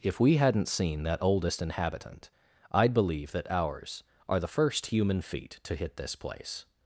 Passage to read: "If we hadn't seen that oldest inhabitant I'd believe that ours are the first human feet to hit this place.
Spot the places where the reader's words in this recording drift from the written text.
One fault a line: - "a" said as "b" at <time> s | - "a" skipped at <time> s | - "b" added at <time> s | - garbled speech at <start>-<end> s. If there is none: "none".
none